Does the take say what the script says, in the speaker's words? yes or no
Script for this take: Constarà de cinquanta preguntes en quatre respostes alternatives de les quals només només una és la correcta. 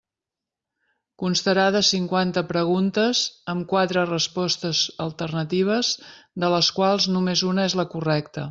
no